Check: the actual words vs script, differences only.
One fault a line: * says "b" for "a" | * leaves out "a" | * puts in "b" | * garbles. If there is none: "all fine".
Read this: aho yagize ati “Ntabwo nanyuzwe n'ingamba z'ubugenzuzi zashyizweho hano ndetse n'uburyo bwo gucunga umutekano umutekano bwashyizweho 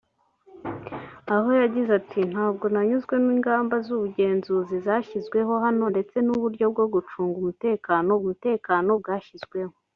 all fine